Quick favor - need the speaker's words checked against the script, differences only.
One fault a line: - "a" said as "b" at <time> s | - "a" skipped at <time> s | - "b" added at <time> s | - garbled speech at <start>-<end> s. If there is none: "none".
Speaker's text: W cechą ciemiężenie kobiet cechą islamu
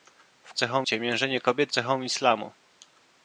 none